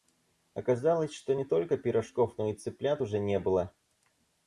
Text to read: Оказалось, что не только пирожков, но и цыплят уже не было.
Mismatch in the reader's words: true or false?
false